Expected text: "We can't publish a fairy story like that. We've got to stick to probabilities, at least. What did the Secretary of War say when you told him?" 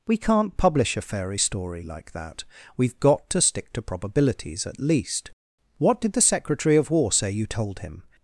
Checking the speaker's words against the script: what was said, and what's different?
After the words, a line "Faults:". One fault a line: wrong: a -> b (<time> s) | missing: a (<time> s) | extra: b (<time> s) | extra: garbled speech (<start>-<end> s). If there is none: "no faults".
"We can't publish a fairy story like that. We've got to stick to probabilities, at least. What did the Secretary of War say you told him?"
Faults:
missing: when (7.3 s)